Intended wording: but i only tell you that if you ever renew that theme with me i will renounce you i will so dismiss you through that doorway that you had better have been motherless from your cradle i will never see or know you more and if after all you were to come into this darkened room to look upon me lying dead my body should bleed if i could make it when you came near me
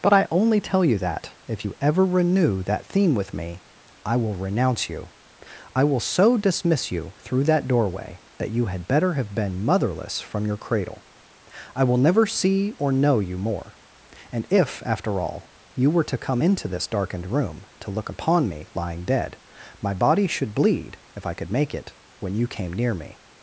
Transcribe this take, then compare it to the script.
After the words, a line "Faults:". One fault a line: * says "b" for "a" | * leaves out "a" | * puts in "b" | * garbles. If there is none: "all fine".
but i only tell you that if you ever renew that theme with me i will renounce you i will so dismiss you through that doorway that you had better have been motherless from your cradle i will never see or know you more and if after all you were to come into this darkened room to look upon me lying dead my body should bleed if i could make it when you came near me
Faults:
all fine